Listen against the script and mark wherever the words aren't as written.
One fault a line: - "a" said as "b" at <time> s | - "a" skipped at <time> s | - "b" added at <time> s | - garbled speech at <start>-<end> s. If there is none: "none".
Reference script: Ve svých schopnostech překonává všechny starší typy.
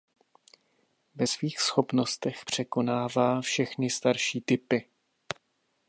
none